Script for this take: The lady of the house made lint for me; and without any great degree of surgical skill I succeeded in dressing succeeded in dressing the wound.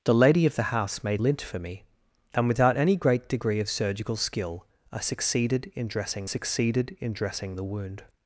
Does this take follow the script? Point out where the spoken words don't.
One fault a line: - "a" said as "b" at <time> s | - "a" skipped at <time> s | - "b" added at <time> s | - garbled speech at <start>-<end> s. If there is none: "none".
none